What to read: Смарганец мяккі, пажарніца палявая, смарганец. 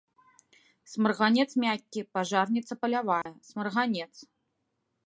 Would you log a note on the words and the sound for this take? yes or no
yes